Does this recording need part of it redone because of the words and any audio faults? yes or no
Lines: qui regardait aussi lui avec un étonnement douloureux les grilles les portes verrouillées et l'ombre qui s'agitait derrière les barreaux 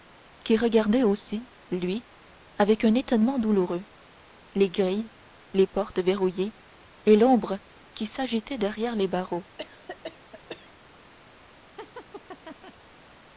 yes